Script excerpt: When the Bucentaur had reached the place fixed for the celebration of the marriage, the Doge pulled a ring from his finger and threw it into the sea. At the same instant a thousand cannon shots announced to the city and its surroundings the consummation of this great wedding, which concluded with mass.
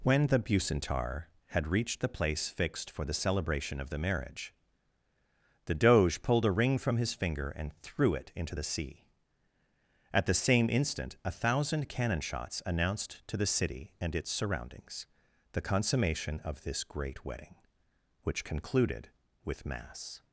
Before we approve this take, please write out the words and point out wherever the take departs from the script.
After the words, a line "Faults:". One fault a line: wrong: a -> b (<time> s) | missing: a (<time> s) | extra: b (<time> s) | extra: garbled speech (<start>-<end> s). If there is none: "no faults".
When the Bucentaur had reached the place fixed for the celebration of the marriage, the Doge pulled a ring from his finger and threw it into the sea. At the same instant a thousand cannon shots announced to the city and its surroundings the consummation of this great wedding, which concluded with mass.
Faults:
no faults